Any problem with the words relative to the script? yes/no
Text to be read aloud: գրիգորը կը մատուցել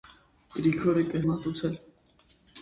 no